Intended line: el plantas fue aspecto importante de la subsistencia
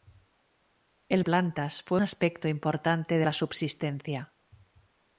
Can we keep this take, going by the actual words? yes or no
yes